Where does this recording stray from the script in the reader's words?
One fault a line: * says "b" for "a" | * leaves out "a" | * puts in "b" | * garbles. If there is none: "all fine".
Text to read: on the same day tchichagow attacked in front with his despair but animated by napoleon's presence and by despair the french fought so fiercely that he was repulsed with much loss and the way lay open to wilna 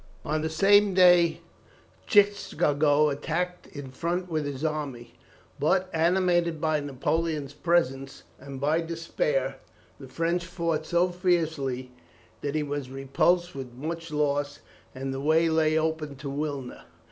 * says "army" for "despair"